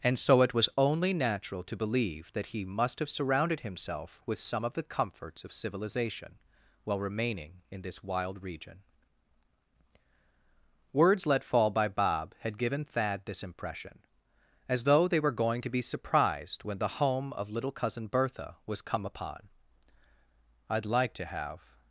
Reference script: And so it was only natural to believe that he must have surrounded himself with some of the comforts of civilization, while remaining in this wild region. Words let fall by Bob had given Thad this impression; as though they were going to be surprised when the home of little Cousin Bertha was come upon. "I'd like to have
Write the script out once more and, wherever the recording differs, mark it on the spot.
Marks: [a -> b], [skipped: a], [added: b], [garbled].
And so it was only natural to believe that he must have surrounded himself with some of the comforts of civilization, while remaining in this wild region. Words let fall by Bob had given Thad this impression; as though they were going to be surprised when the home of little Cousin Bertha was come upon. "I'd like to have